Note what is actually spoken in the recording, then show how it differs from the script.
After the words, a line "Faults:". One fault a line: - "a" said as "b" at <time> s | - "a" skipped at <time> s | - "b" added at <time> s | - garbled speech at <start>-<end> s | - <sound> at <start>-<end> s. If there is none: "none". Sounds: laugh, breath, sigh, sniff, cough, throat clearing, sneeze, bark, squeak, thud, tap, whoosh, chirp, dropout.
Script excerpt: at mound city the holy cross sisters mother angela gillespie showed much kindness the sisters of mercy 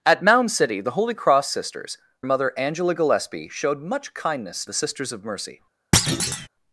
at mound city the holy cross sisters mother angela gillespie showed much kindness the sisters of mercy
Faults:
- thud at 5.9-6.5 s